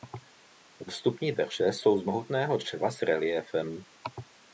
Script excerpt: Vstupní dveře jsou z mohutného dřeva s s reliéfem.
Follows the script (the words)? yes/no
no